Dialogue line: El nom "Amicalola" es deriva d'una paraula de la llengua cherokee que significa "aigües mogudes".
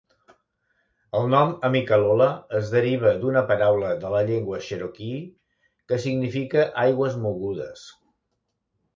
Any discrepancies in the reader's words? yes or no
no